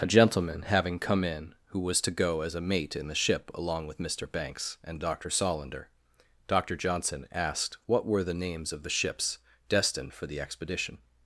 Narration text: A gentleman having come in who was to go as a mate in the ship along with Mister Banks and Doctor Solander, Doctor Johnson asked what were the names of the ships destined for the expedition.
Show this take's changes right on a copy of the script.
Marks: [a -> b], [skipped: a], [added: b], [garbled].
A gentleman having come in who was to go as a mate in the ship along with Mister Banks and Doctor Solander, Doctor Johnson asked what were the names of the ships destined for the expedition.